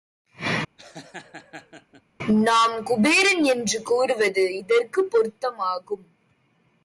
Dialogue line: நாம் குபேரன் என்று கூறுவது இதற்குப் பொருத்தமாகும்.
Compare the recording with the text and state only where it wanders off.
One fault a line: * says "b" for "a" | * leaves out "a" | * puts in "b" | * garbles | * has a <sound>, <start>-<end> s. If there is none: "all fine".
* has a laugh, 0.8-2.0 s